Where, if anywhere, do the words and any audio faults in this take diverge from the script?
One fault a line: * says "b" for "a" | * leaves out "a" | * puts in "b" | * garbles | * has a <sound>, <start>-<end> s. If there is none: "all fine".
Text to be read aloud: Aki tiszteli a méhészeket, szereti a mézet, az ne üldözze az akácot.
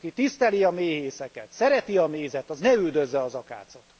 all fine